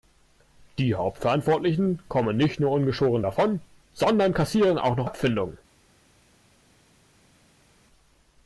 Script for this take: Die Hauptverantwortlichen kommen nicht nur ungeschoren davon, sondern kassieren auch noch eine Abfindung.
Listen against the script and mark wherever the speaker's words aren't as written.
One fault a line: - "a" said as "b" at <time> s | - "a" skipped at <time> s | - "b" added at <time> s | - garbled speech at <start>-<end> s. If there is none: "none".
- "eine" skipped at 5.1 s